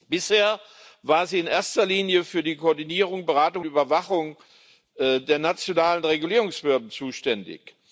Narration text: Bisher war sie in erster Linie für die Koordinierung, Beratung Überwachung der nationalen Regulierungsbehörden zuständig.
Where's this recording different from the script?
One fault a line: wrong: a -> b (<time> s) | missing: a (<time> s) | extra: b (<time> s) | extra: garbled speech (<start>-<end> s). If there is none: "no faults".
no faults